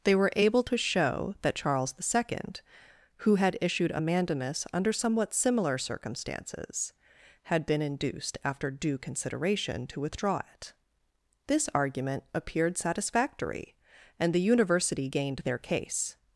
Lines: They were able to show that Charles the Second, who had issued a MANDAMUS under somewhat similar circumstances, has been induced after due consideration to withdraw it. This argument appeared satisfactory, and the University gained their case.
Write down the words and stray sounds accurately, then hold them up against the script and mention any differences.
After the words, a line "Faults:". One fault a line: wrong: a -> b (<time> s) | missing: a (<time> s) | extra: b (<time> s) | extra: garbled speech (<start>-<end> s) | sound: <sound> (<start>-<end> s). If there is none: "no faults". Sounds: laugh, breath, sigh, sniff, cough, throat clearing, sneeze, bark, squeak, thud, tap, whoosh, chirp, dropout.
They were able to show that Charles the Second, who had issued a MANDAMUS under somewhat similar circumstances, had been induced after due consideration to withdraw it. This argument appeared satisfactory, and the University gained their case.
Faults:
wrong: has -> had (7.4 s)